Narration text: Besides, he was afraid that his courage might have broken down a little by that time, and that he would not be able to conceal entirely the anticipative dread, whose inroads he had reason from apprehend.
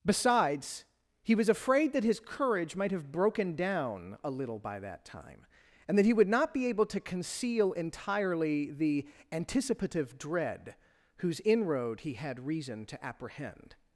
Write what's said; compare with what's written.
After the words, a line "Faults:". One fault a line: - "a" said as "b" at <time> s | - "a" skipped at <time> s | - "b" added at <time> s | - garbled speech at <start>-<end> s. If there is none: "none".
Besides, he was afraid that his courage might have broken down a little by that time, and that he would not be able to conceal entirely the anticipative dread, whose inroad he had reason to apprehend.
Faults:
- "inroads" said as "inroad" at 11.4 s
- "from" said as "to" at 12.8 s